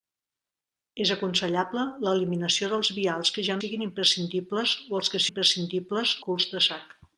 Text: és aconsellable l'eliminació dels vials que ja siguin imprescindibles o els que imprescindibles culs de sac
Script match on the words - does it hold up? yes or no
yes